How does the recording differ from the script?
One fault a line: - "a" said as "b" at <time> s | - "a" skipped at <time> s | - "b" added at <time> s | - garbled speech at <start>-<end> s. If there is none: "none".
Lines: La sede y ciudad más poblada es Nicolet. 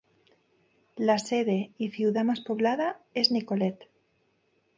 none